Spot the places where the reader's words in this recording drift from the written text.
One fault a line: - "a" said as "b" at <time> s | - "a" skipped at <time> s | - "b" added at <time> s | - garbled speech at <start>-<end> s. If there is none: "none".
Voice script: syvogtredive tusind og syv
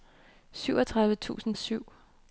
none